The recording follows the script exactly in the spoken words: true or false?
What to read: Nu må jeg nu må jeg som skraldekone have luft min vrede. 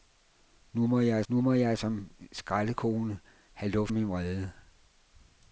true